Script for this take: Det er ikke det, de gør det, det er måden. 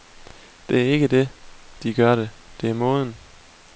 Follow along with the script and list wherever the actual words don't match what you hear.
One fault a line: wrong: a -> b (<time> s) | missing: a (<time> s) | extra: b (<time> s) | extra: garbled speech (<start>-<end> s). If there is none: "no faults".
no faults